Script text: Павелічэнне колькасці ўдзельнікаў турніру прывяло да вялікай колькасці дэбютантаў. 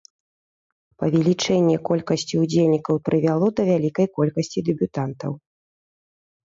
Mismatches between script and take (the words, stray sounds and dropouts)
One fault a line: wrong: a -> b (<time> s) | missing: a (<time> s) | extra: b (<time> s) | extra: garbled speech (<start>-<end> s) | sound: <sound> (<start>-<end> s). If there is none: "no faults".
missing: турніру (3.0 s)